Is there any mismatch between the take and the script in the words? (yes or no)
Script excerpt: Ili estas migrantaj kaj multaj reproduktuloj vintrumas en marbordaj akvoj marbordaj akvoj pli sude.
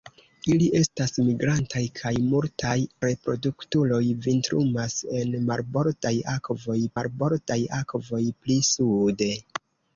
no